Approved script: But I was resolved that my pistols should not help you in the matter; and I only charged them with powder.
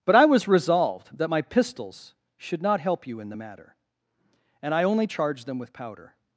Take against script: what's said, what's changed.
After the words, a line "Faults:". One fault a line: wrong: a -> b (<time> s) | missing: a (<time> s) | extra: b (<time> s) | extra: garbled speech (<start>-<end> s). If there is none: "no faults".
But I was resolved that my pistols should not help you in the matter; and I only charged them with powder.
Faults:
no faults